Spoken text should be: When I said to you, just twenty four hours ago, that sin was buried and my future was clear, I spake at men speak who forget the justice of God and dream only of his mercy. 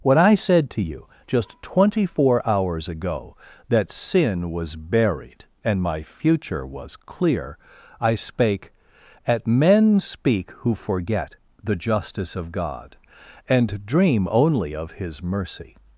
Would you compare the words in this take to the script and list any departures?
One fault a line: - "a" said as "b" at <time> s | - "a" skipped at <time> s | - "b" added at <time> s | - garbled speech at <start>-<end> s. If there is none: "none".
none